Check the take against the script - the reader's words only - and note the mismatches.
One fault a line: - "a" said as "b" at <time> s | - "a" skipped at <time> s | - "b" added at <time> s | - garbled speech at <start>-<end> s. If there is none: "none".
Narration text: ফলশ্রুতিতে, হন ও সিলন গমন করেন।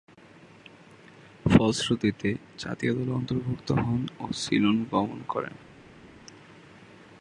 - "জাতীয় দলে অন্তর্ভুক্ত" added at 2.6 s